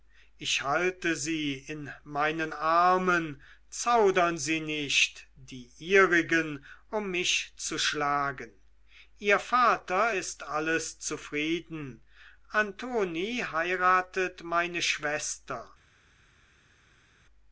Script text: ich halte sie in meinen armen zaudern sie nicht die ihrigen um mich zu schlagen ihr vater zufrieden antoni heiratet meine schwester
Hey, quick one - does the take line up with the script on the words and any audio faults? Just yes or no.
no